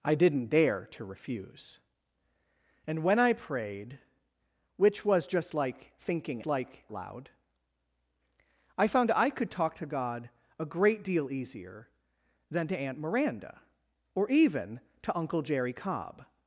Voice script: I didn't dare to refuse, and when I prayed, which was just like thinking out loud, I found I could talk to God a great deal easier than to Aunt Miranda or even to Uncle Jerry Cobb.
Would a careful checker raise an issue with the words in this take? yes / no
yes